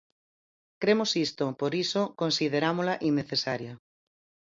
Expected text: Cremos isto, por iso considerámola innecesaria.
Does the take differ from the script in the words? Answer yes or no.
no